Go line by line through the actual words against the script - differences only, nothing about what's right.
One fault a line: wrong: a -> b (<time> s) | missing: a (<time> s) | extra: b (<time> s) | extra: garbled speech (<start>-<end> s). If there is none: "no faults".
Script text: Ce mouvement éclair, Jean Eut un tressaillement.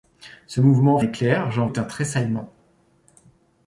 no faults